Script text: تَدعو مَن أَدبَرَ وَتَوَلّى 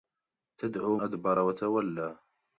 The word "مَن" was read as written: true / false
false